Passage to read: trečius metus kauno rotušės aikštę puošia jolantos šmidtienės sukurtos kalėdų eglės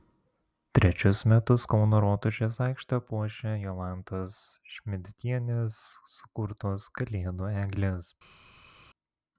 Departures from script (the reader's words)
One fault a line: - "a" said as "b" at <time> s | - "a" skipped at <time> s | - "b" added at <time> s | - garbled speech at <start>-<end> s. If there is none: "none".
none